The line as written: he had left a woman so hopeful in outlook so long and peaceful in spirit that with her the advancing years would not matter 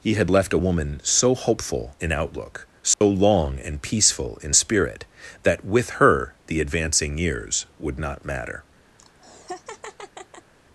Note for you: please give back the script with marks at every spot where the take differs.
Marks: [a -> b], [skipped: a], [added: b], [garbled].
he had left a woman so hopeful in outlook so long and peaceful in spirit that with her the advancing years would not matter